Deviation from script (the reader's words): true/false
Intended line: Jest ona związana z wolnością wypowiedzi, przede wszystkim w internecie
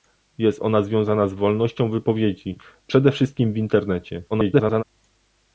true